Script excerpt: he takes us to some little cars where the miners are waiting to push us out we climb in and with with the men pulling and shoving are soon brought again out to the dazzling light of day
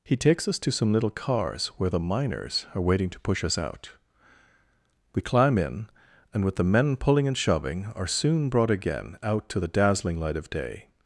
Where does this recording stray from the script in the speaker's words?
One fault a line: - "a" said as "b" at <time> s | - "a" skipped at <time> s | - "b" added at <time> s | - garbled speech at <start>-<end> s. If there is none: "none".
- "with" skipped at 6.5 s